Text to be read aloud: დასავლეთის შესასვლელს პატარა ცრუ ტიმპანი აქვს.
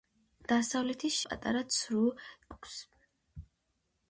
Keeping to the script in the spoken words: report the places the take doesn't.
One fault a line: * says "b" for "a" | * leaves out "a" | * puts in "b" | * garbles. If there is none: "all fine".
* leaves out "შესასვლელს"
* leaves out "ტიმპანი"